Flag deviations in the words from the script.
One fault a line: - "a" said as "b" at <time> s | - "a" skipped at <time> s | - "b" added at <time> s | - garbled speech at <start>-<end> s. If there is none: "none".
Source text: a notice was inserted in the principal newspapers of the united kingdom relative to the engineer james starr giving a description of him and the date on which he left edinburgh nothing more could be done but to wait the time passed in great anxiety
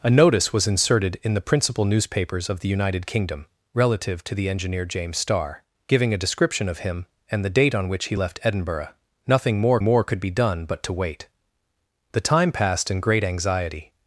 - "more" added at 9.8 s